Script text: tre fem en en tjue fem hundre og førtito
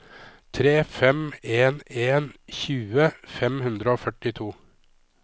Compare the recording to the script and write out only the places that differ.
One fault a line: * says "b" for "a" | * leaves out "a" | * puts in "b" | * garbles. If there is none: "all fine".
all fine